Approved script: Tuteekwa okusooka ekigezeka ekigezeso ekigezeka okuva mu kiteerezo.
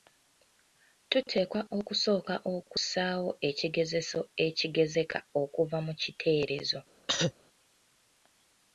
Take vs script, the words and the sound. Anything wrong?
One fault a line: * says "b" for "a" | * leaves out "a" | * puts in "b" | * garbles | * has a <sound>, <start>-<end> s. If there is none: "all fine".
* says "okussaawo" for "ekigezeka"
* has a cough, 7.1-7.3 s